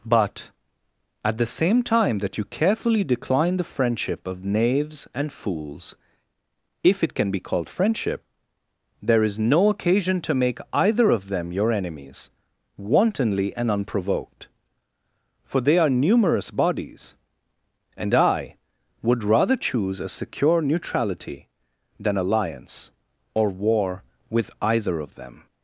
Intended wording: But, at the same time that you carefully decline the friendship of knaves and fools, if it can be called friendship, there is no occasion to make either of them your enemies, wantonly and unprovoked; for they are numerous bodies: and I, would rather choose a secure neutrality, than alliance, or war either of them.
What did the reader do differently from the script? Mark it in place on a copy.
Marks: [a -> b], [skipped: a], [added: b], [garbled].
But, at the same time that you carefully decline the friendship of knaves and fools, if it can be called friendship, there is no occasion to make either of them your enemies, wantonly and unprovoked; for they are numerous bodies: and I, would rather choose a secure neutrality, than alliance, or war [added: with] either of them.